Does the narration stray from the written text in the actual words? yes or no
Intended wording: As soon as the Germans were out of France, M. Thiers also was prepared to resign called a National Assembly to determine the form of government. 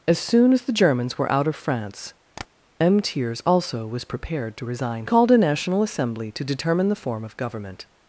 no